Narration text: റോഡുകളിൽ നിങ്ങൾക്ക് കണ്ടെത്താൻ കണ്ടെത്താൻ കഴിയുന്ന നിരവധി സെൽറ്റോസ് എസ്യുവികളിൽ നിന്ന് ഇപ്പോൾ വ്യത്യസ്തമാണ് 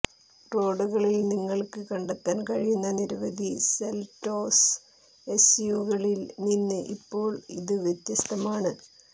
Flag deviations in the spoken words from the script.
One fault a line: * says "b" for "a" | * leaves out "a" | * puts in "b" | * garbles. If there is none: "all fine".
* leaves out "കണ്ടെത്താൻ"
* puts in "ഇത്"